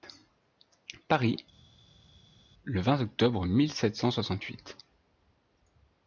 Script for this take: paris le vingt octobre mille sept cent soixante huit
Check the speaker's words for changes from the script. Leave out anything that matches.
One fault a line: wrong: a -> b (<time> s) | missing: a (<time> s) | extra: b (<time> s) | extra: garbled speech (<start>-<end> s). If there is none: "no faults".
no faults